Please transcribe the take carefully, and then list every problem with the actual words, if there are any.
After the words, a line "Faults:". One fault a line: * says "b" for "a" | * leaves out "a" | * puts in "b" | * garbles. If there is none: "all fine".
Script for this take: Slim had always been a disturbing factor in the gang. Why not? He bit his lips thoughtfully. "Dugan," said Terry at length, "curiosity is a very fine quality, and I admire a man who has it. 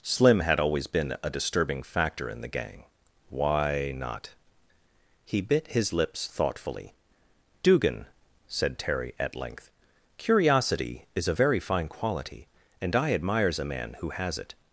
Slim had always been a disturbing factor in the gang. Why not? He bit his lips thoughtfully. "Dugan," said Terry at length, "curiosity is a very fine quality, and I admires a man who has it.
Faults:
* says "admires" for "admire"